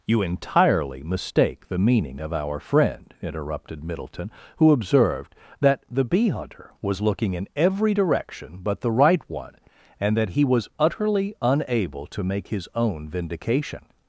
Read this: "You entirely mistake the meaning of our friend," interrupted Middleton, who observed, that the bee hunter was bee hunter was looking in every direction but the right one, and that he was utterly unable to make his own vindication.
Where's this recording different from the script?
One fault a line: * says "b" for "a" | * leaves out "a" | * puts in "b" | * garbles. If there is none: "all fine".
* leaves out "bee hunter was"